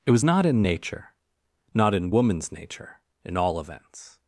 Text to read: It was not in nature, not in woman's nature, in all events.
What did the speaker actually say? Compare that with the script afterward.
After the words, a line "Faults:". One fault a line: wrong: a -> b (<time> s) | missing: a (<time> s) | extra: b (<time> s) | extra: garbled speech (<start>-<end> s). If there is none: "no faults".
It was not in nature, not in woman's nature, in all events.
Faults:
no faults